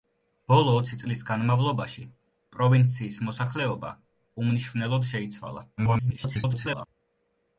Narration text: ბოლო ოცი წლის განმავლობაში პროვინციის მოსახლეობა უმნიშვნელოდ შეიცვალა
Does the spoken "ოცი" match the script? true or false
true